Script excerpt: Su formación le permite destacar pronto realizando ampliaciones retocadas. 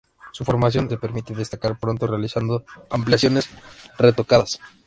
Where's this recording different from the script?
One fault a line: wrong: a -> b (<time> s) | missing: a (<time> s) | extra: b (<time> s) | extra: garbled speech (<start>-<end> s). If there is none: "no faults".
no faults